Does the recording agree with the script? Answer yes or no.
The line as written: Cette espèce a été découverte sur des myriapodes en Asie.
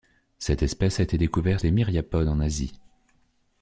no